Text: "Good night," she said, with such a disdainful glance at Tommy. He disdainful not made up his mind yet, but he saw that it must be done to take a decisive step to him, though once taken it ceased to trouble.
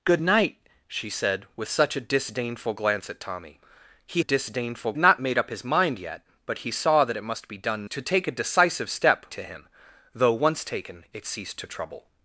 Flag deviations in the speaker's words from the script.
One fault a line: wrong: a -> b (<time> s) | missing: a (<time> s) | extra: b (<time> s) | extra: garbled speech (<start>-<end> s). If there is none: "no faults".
no faults